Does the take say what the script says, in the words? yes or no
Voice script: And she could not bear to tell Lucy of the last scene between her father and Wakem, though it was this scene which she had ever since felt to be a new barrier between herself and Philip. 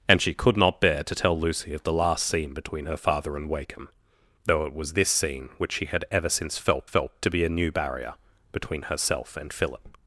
no